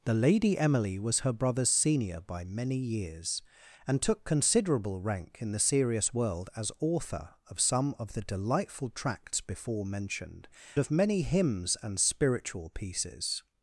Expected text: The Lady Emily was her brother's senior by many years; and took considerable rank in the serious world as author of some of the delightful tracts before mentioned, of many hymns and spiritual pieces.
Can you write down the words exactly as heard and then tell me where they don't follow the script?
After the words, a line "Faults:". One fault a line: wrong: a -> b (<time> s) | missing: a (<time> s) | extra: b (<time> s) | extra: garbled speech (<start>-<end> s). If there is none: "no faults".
The Lady Emily was her brother's senior by many years; and took considerable rank in the serious world as author of some of the delightful tracts before mentioned, of many hymns and spiritual pieces.
Faults:
no faults